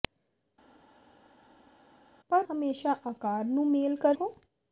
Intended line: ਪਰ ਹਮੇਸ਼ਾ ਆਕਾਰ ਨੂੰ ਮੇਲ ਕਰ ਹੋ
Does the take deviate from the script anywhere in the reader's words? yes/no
no